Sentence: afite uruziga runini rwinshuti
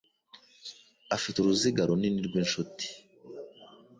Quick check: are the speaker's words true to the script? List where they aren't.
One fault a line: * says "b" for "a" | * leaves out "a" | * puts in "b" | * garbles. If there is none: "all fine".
all fine